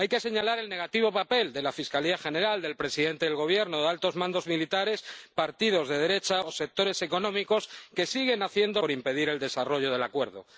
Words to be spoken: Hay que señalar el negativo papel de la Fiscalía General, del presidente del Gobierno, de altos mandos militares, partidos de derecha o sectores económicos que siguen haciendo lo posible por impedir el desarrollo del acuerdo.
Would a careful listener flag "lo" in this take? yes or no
yes